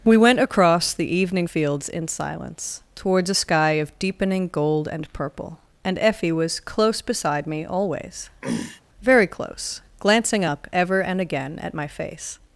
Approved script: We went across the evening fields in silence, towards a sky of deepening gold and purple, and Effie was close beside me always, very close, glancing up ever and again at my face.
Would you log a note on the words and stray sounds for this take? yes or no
yes